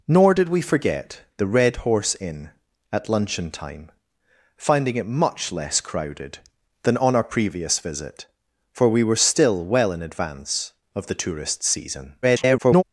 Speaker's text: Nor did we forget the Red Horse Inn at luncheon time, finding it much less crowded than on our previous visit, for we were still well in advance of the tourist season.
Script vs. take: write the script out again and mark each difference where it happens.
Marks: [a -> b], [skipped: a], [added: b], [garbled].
Nor did we forget the Red Horse Inn at luncheon time, finding it much less crowded than on our previous visit, for we were still well in advance of the tourist season. [garbled]